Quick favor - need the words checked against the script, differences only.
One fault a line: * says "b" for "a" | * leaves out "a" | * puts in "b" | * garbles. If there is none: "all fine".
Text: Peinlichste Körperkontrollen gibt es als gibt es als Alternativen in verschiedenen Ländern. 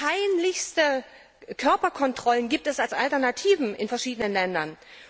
* leaves out "gibt es als"